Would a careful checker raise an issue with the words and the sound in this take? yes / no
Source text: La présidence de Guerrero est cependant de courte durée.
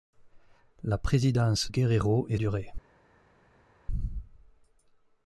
yes